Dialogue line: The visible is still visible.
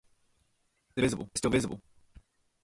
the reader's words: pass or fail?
pass